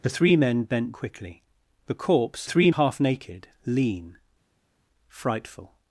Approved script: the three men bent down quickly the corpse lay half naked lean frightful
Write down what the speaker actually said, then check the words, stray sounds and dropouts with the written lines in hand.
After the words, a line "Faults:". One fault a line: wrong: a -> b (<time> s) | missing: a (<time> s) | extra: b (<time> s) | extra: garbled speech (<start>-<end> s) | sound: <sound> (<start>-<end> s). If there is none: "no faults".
the three men bent quickly the corpse three half naked lean frightful
Faults:
missing: down (0.9 s)
wrong: lay -> three (2.4 s)